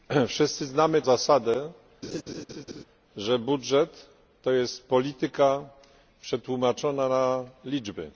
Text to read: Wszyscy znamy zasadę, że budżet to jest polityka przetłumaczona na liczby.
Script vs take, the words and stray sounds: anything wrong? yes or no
yes